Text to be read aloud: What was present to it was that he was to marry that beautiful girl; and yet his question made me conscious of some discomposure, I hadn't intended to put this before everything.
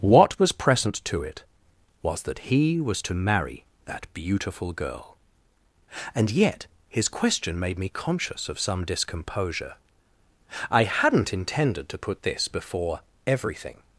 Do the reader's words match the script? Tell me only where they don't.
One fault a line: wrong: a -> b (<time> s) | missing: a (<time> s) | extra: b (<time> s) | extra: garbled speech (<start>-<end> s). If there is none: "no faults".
no faults